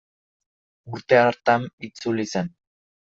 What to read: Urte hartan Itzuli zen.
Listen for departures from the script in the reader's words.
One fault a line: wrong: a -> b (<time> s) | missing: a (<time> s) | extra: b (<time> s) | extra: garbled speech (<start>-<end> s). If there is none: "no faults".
no faults